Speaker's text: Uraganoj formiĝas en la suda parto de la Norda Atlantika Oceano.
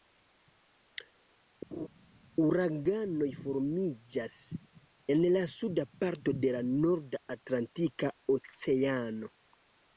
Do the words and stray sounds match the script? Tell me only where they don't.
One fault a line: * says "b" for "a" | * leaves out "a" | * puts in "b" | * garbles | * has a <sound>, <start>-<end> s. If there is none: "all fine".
* has a laugh, 1.7-1.9 s